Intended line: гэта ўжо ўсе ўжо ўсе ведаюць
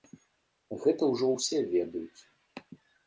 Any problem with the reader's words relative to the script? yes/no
yes